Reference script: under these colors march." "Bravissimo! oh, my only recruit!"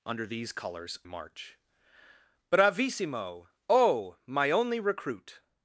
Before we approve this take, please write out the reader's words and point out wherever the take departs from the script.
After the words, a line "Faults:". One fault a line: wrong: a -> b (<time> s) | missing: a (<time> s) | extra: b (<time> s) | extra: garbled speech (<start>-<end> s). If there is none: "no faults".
under these colors march." "Bravissimo! oh, my only recruit!"
Faults:
no faults